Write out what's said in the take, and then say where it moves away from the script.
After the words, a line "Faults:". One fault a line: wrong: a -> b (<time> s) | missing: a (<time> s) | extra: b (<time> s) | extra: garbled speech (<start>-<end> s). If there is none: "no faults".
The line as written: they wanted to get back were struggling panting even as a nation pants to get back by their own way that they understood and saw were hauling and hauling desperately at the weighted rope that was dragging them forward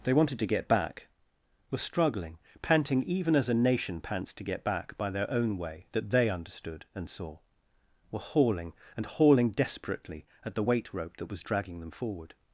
they wanted to get back were struggling panting even as a nation pants to get back by their own way that they understood and saw were hauling and hauling desperately at the weight rope that was dragging them forward
Faults:
wrong: weighted -> weight (10.6 s)